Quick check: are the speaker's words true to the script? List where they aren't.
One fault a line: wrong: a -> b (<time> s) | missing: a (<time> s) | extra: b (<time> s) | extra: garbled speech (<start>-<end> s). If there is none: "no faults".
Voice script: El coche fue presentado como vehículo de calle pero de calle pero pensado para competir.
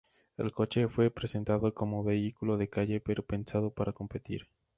missing: de calle pero (3.2 s)